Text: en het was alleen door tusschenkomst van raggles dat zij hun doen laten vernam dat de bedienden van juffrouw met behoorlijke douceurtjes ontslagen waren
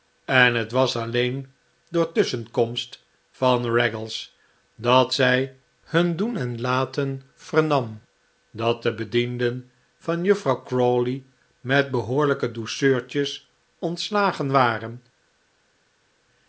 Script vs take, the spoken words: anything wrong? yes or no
yes